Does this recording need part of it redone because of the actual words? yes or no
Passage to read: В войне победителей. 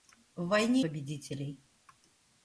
no